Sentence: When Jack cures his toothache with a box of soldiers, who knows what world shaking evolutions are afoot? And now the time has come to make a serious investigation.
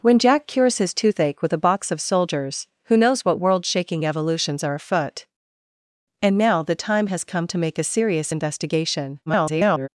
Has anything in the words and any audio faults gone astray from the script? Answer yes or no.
yes